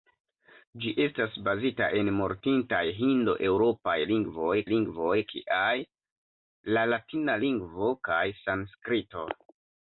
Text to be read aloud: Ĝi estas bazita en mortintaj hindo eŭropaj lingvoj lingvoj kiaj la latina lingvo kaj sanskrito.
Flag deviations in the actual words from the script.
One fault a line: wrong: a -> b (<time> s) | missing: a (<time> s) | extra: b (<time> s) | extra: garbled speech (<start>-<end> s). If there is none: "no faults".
no faults